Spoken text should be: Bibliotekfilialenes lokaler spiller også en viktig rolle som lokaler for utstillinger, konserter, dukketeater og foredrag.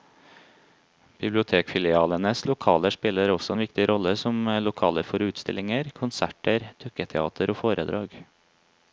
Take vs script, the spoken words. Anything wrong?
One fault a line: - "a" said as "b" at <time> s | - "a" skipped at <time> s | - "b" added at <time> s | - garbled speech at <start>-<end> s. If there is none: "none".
none